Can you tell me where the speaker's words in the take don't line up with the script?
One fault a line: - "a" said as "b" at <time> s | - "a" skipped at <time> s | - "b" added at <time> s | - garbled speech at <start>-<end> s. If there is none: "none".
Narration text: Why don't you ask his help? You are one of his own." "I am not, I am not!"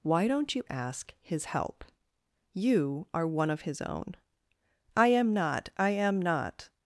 none